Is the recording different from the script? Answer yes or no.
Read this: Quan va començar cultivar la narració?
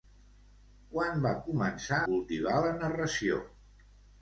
no